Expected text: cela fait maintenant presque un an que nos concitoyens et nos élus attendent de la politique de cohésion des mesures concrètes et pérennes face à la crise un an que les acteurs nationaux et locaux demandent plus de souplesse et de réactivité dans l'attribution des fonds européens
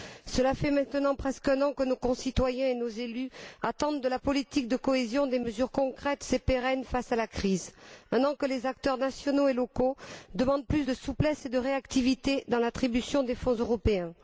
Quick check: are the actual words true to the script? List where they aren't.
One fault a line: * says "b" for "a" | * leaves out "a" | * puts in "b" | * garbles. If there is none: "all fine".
all fine